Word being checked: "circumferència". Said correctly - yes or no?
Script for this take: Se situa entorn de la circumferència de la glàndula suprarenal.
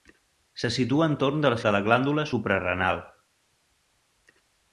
no